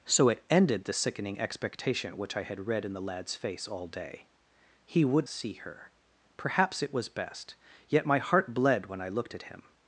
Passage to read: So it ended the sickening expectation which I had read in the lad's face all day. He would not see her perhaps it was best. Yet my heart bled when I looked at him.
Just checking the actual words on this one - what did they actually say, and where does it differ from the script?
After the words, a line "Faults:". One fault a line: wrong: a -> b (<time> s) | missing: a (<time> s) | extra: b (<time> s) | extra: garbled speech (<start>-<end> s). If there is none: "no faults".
So it ended the sickening expectation which I had read in the lad's face all day. He would see her perhaps it was best. Yet my heart bled when I looked at him.
Faults:
missing: not (5.3 s)